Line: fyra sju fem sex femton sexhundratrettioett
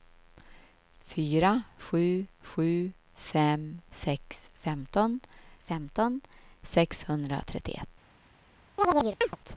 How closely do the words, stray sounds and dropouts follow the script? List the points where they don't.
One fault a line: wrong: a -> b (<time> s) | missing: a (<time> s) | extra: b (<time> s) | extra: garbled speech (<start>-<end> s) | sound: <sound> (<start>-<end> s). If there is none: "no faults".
extra: sju (2.4 s)
extra: femton (5.6 s)
sound: chirp (8.8-9.4 s)